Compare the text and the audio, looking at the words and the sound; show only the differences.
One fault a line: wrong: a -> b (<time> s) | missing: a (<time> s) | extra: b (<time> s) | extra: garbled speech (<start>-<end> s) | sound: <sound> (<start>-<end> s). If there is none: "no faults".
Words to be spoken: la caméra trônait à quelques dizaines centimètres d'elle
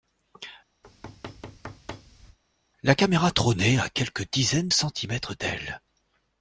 sound: thud (0.8-2.4 s)